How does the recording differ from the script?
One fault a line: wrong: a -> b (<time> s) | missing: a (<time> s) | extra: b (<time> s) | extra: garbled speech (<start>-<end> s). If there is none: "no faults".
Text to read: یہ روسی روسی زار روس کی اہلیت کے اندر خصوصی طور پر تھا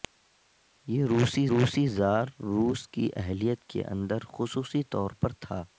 no faults